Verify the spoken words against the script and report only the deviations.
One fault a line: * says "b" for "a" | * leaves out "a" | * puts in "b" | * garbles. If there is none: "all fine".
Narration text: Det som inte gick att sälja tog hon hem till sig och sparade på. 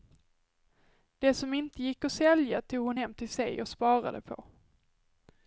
all fine